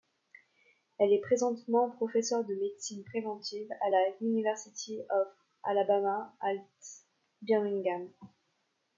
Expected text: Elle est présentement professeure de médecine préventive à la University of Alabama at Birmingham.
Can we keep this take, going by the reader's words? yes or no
yes